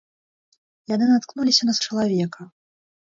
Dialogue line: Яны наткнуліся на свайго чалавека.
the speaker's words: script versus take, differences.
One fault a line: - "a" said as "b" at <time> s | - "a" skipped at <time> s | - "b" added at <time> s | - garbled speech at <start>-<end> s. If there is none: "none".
- "свайго" skipped at 1.8 s